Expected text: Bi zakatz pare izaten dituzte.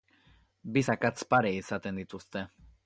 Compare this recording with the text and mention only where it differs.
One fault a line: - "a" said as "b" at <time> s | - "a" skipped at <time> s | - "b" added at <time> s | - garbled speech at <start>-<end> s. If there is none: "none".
none